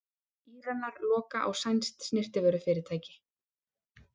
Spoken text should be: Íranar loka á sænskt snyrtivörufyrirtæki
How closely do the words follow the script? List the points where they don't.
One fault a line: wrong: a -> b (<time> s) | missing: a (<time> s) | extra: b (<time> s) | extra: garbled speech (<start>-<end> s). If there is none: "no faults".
no faults